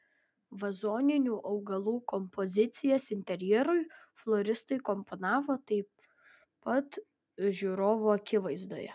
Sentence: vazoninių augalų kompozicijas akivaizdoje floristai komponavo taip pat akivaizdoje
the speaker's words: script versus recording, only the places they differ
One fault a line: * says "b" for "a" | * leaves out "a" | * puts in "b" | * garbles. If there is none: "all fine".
* says "interjerui" for "akivaizdoje"
* puts in "žiūrovų"